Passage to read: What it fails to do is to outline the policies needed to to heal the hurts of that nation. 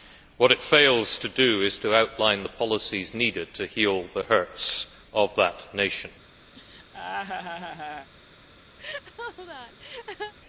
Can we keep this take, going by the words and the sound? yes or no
no